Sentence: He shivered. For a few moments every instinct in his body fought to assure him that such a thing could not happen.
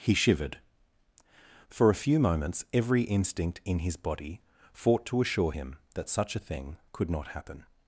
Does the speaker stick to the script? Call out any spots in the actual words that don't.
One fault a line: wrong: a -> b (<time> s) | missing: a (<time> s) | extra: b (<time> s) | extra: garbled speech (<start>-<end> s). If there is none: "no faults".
no faults